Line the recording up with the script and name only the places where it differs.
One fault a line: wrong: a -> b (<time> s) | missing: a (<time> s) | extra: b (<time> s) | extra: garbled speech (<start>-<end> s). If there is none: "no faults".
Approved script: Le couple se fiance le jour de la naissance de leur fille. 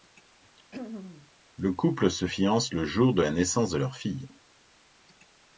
no faults